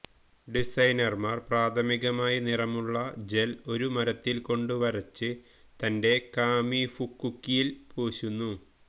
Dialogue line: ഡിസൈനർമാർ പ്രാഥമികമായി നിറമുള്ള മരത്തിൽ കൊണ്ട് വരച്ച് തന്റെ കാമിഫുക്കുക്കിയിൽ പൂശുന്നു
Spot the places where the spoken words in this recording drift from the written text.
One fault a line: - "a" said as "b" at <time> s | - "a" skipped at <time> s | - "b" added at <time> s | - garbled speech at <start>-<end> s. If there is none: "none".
- "ജെൽ ഒരു" added at 3.3 s